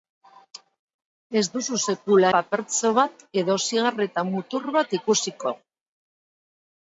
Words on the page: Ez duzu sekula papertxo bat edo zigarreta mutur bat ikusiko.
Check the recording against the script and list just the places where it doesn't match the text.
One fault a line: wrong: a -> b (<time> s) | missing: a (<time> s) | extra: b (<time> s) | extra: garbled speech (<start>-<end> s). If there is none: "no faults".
no faults